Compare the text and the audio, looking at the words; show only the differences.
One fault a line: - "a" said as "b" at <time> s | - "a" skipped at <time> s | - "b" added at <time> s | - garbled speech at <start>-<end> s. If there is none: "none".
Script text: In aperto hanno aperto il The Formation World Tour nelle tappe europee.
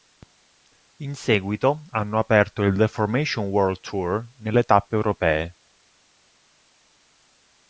- "aperto" said as "seguito" at 1.1 s